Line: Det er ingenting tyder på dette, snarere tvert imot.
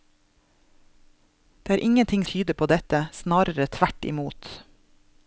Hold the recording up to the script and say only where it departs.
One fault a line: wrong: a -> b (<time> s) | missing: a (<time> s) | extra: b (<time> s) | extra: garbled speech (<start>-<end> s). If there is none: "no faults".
no faults